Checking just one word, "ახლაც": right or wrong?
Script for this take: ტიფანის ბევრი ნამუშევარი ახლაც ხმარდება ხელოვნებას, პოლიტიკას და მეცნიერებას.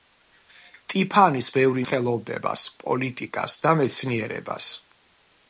wrong